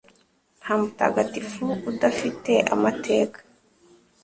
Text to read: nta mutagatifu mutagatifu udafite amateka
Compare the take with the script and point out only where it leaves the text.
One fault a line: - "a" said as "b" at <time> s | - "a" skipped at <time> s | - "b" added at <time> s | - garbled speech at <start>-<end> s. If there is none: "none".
- "mutagatifu" skipped at 1.6 s